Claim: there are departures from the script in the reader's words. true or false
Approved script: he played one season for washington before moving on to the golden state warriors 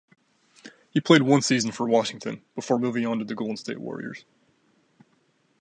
false